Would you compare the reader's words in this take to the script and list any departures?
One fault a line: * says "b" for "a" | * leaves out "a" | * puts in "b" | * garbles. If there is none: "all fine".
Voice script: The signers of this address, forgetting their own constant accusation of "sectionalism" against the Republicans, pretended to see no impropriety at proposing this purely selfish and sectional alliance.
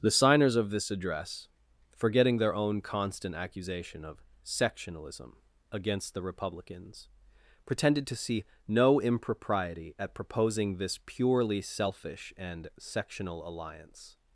all fine